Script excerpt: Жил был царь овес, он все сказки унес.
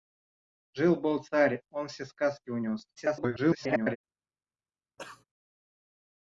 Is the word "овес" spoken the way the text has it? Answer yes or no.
no